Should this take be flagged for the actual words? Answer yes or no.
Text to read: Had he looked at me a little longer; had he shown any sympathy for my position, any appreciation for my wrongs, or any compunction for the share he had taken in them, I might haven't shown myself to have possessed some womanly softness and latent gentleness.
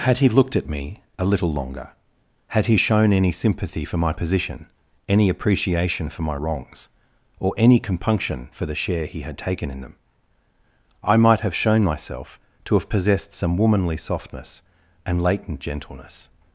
yes